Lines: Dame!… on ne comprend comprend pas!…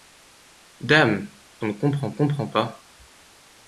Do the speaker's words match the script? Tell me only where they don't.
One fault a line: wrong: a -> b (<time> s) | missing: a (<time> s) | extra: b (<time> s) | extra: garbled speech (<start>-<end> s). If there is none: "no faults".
no faults